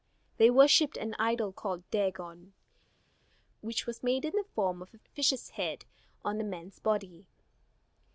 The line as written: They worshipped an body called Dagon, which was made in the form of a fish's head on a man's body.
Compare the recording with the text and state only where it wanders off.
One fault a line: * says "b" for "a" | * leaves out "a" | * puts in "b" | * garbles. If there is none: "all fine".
* says "idol" for "body"